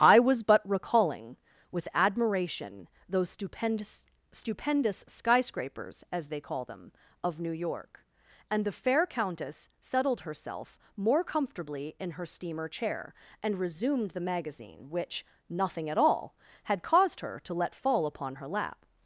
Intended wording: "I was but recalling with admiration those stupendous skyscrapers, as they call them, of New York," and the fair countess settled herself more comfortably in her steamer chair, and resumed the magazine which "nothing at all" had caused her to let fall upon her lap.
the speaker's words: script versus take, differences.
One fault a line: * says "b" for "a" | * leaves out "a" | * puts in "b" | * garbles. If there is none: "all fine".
* puts in "stupendous"